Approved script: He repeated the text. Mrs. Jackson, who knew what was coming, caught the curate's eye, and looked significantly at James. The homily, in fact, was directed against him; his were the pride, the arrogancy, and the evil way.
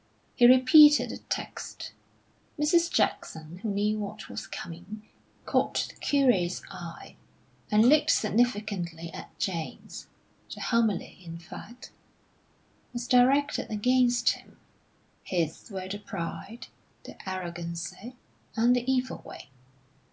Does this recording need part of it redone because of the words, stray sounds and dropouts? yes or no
no